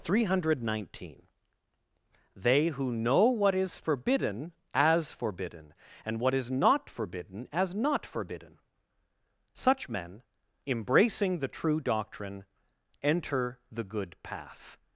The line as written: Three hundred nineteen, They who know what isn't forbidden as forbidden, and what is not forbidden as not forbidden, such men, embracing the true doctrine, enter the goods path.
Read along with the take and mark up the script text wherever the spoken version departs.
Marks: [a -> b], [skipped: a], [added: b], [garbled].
Three hundred nineteen, They who know what [isn't -> is] forbidden as forbidden, and what is not forbidden as not forbidden, such men, embracing the true doctrine, enter the [goods -> good] path.